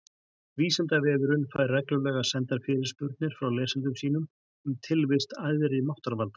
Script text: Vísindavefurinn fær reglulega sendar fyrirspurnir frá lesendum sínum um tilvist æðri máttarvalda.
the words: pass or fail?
pass